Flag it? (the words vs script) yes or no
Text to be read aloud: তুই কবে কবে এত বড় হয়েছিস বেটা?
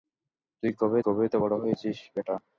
no